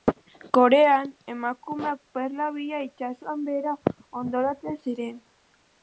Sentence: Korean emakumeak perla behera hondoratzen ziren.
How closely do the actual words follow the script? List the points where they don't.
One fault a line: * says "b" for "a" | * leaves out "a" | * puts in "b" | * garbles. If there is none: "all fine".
* puts in "bila itsasoan"